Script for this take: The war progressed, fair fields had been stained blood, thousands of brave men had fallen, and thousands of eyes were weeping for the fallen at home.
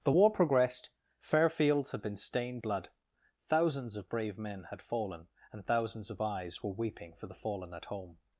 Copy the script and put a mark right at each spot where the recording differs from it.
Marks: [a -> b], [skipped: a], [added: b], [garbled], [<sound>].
The war progressed, fair fields had been stained blood, thousands of brave men had fallen, and thousands of eyes were weeping for the fallen at home.